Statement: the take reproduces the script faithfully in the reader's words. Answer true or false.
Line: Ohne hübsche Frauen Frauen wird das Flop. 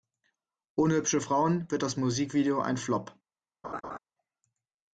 false